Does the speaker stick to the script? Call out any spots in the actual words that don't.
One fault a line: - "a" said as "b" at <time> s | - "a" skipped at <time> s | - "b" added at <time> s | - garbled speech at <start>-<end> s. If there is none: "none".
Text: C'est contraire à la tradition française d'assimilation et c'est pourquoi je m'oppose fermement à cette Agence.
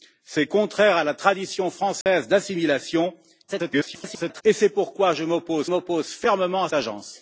- garbled speech at 3.5-4.4 s
- "m'oppose" added at 5.6 s
- "cette" skipped at 6.7 s